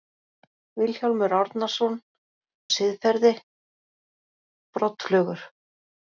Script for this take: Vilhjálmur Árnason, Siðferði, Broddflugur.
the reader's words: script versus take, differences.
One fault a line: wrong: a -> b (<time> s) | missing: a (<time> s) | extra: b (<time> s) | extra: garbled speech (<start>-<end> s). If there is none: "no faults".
no faults